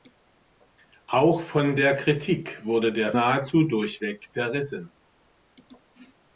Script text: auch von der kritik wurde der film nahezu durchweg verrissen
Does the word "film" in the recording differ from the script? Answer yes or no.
yes